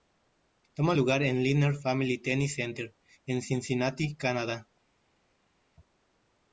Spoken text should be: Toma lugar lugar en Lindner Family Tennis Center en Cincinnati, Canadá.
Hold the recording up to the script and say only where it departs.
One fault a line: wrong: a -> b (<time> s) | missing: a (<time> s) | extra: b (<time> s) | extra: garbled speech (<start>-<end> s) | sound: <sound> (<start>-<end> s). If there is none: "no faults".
missing: lugar (1.2 s)